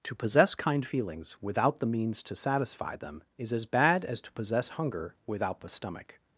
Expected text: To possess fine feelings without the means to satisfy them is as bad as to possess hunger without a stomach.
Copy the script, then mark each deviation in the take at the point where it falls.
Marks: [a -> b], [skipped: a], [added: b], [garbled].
To possess [fine -> kind] feelings without the means to satisfy them is as bad as to possess hunger without [a -> the] stomach.